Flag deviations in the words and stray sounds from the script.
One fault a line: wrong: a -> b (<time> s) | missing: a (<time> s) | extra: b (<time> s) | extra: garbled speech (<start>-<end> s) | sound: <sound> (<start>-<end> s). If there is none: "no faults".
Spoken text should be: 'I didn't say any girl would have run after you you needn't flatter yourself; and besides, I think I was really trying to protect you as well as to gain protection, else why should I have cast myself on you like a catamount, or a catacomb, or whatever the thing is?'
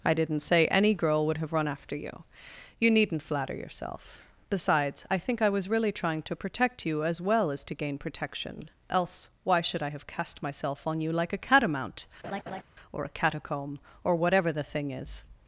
missing: and (4.2 s)
sound: laugh (12.2-12.6 s)